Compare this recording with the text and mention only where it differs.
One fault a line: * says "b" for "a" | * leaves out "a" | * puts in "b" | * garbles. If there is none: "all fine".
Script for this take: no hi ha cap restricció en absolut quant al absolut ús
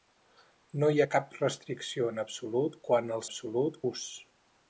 all fine